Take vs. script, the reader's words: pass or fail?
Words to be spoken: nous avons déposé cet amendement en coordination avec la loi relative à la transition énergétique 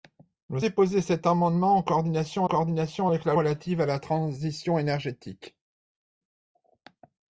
fail